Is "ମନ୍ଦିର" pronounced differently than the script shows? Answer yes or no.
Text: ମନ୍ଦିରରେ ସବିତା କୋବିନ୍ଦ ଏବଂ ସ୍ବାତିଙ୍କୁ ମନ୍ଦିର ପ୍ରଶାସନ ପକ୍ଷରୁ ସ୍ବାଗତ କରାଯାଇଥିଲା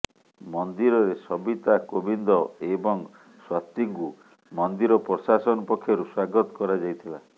no